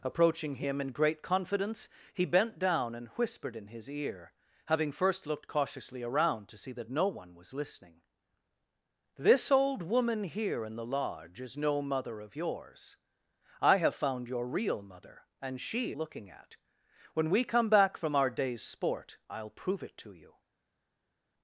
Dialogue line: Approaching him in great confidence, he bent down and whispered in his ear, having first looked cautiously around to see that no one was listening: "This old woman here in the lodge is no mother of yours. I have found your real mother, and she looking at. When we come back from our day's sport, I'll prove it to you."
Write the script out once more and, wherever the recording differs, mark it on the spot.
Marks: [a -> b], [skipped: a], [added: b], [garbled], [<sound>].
Approaching him in great confidence, he bent down and whispered in his ear, having first looked cautiously around to see that no one was listening: "This old woman here in the lodge is no mother of yours. I have found your real mother, and she looking at. When we come back from our day's sport, I'll prove it to you."